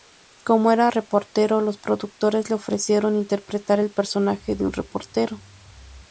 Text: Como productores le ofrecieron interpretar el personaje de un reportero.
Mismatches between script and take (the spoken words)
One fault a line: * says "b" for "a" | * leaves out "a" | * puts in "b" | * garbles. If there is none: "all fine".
* puts in "era reportero los"